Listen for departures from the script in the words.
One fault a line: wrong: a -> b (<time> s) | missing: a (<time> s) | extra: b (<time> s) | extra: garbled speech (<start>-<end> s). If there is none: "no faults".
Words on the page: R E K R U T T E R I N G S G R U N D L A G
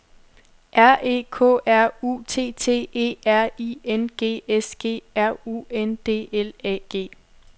no faults